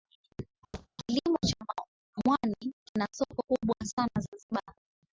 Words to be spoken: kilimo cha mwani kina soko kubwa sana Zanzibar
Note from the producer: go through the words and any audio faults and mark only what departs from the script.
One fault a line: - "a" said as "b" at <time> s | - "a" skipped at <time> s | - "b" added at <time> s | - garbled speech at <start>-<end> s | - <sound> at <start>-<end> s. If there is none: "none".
- thud at 0.7-0.9 s